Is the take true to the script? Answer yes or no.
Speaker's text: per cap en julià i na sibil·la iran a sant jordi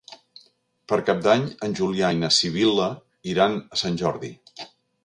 no